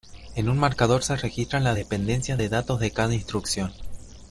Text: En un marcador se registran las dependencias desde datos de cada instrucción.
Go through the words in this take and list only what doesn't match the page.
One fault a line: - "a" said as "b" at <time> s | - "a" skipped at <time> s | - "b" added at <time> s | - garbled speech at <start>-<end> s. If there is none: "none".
- "desde" said as "de" at 2.4 s